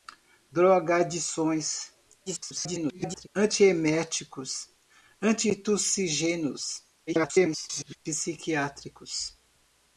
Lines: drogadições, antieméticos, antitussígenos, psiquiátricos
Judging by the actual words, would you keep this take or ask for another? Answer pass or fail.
fail